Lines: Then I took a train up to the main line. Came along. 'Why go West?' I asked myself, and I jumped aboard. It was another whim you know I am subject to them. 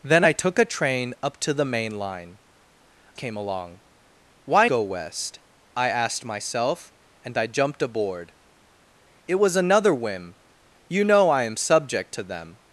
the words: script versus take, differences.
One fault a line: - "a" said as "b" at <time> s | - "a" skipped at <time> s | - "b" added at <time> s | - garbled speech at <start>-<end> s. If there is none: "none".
none